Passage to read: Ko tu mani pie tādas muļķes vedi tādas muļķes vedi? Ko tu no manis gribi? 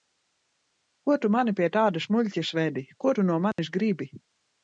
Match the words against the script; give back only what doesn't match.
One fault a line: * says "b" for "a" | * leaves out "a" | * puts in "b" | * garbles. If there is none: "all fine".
* leaves out "tādas muļķes vedi"